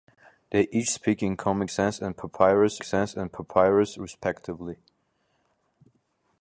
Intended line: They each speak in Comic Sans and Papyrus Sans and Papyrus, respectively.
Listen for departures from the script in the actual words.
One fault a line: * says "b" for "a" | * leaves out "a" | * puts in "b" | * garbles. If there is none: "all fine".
all fine